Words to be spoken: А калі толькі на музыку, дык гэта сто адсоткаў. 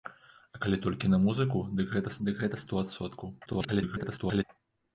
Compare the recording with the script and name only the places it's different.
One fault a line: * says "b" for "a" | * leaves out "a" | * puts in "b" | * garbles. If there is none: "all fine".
* puts in "дык гэта"
* garbles